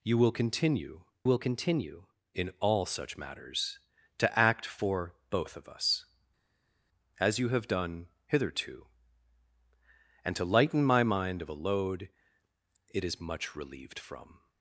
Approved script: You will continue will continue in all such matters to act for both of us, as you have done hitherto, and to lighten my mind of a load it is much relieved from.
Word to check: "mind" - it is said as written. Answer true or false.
true